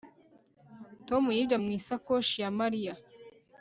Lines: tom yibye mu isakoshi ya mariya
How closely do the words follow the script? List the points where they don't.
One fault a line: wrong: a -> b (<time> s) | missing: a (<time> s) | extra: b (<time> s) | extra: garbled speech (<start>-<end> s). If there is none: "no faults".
no faults